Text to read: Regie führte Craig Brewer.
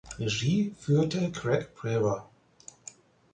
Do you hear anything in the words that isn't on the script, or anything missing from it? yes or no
no